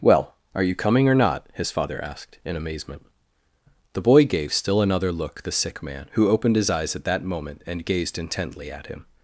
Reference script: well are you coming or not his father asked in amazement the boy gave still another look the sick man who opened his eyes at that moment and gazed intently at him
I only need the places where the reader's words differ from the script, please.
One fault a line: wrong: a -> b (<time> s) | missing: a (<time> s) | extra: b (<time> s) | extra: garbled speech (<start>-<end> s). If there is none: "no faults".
no faults